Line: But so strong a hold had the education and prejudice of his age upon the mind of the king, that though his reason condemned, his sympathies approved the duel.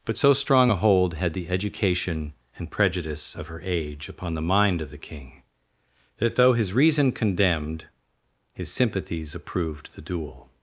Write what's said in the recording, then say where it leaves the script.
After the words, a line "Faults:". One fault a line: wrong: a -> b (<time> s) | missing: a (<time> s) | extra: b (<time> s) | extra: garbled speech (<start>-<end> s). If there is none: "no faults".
But so strong a hold had the education and prejudice of her age upon the mind of the king, that though his reason condemned, his sympathies approved the duel.
Faults:
wrong: his -> her (3.5 s)